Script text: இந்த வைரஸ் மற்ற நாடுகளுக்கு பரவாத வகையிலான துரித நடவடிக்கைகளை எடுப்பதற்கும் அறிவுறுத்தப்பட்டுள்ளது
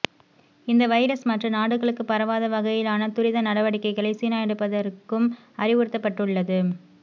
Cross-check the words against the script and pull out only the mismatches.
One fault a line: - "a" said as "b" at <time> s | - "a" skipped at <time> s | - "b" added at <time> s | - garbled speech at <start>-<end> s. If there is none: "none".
- "சீனா" added at 4.1 s